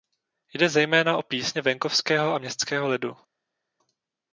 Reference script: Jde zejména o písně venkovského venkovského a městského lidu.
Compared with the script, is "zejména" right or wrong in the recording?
right